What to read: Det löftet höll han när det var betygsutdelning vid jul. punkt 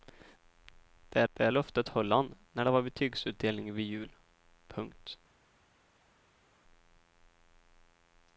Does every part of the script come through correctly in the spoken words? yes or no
no